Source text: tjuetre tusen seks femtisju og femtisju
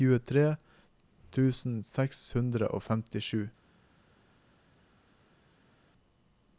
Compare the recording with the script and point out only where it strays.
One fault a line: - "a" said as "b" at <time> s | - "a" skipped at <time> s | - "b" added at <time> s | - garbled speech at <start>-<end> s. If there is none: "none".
- "femtisju" said as "hundre" at 2.3 s